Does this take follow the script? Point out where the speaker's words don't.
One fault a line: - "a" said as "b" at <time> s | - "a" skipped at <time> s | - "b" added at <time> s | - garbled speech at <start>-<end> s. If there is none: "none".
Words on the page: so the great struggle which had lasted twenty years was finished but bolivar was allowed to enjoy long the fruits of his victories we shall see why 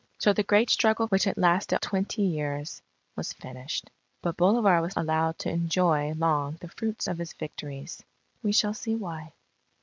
none